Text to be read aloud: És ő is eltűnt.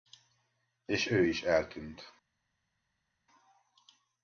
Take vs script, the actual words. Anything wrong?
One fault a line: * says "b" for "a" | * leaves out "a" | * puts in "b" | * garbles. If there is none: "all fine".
all fine